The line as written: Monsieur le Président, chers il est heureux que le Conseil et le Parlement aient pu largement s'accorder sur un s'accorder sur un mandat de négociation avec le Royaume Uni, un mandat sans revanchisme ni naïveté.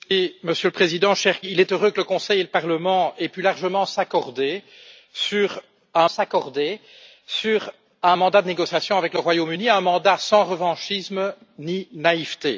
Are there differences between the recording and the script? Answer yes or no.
no